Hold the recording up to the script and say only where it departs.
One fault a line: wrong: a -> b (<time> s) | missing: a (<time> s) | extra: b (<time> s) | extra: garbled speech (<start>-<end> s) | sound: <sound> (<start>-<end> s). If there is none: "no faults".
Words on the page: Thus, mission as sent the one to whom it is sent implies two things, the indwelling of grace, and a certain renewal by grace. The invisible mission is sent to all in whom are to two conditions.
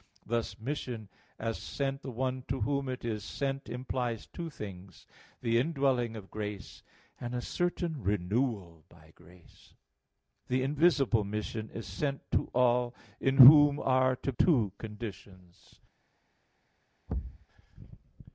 sound: thud (17.1-17.5 s)